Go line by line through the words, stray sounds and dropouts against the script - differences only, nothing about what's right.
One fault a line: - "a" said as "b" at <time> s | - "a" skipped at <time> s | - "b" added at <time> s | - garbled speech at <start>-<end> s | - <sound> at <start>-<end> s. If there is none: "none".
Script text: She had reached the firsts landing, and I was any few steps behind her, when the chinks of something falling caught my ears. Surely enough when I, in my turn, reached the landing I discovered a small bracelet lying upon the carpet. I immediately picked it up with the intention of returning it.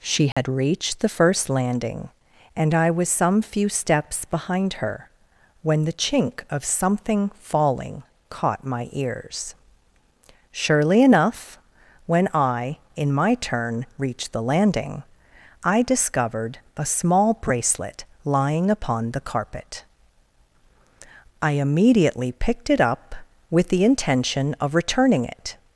- dropout at 0.3-0.4 s
- "firsts" said as "first" at 1.1 s
- "any" said as "some" at 3.1 s
- "chinks" said as "chink" at 5.9 s